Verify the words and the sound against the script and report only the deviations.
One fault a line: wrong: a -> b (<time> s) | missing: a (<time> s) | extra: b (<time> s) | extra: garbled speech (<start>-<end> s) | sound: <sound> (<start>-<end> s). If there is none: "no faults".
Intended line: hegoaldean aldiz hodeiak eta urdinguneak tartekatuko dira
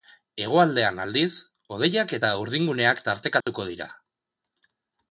sound: dropout (3.4-3.5 s)